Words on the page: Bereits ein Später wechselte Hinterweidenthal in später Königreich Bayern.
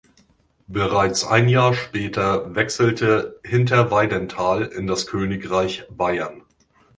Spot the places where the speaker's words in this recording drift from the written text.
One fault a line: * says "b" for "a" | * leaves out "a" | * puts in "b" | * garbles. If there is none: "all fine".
* puts in "Jahr"
* says "das" for "später"